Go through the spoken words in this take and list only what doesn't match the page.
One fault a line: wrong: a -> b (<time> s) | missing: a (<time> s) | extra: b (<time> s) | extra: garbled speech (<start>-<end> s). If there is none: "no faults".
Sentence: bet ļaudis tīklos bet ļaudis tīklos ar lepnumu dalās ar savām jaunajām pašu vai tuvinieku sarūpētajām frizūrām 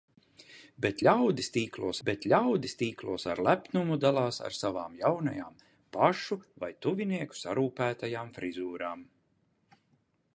no faults